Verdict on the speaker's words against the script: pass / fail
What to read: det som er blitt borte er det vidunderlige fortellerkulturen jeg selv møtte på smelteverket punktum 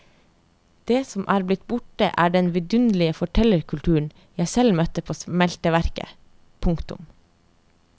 fail